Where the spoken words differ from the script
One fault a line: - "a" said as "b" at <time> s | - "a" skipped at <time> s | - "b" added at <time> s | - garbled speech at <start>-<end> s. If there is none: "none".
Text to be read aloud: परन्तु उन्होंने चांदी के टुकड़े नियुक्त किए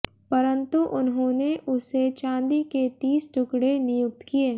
- "उसे" added at 1.7 s
- "तीस" added at 3.0 s